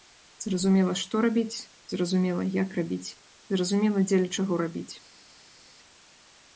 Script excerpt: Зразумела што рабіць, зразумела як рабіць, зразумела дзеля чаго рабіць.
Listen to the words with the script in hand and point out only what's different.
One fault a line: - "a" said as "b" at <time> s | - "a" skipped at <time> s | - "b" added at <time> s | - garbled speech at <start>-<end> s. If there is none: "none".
none